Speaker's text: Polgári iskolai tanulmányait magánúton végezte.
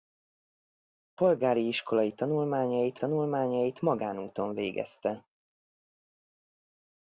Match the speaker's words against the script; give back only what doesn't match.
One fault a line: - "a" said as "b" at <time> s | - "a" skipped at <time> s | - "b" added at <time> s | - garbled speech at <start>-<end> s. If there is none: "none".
- "tanulmányait" added at 2.9 s